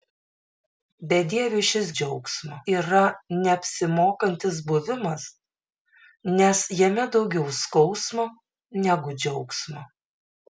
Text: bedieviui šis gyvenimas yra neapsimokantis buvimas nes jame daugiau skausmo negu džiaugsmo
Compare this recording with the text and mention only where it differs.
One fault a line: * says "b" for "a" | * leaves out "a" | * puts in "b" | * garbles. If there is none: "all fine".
* says "džiaugsmo" for "gyvenimas"